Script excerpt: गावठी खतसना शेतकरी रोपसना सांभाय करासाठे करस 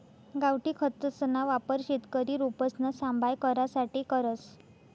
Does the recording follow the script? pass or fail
fail